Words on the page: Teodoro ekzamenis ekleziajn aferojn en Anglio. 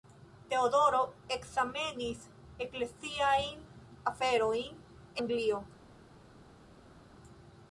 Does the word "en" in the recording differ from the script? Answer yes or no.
yes